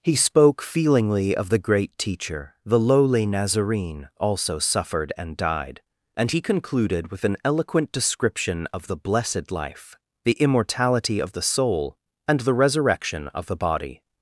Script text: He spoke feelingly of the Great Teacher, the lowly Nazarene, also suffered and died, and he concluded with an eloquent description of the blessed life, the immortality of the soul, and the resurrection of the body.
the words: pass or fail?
pass